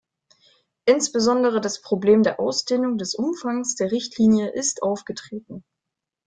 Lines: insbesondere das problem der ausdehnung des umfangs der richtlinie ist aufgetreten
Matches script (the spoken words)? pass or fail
pass